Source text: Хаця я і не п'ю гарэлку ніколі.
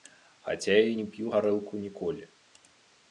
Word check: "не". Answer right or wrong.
right